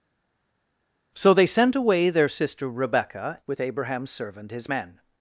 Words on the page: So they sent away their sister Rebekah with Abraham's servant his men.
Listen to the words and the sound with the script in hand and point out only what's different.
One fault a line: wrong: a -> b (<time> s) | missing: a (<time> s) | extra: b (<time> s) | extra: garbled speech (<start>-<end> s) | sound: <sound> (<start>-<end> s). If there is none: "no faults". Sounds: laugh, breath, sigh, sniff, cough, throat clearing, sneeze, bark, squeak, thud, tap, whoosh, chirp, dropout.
no faults